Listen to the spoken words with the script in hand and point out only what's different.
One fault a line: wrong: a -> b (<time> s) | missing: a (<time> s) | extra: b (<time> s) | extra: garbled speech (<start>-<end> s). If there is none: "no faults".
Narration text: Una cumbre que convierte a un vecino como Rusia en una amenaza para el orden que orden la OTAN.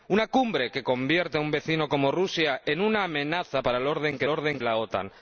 no faults